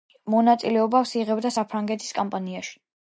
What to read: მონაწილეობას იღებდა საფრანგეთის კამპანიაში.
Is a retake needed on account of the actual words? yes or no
no